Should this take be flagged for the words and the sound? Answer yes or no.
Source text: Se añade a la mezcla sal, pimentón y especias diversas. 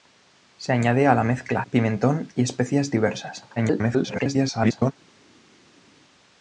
yes